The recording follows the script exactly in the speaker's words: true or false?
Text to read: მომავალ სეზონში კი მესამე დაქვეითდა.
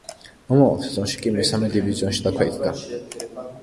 false